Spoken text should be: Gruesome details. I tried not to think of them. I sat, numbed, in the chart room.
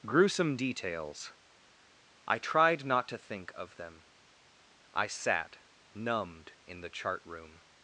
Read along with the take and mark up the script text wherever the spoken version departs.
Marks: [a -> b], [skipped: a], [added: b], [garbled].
Gruesome details. I tried not to think of them. I sat, numbed, in the chart room.